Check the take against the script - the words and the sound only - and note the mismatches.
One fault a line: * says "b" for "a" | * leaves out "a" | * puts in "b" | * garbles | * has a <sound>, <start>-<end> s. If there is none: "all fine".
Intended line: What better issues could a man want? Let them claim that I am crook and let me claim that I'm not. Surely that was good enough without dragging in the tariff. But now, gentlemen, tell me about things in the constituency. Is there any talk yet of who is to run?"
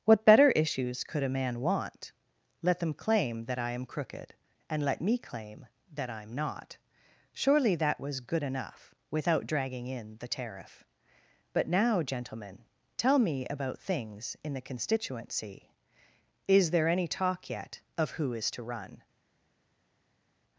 * says "crooked" for "crook"